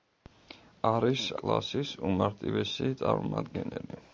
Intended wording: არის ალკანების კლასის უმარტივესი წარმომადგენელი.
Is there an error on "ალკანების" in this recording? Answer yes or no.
yes